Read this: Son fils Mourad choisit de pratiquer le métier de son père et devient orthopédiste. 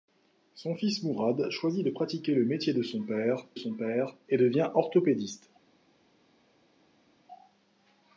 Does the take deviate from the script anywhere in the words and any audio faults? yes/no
yes